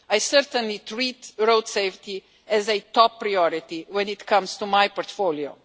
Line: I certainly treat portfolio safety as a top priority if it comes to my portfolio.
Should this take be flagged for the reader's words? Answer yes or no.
yes